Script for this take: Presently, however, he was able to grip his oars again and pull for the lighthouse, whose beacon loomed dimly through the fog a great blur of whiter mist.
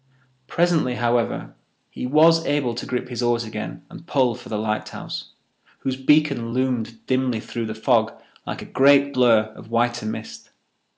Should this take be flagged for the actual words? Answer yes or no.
yes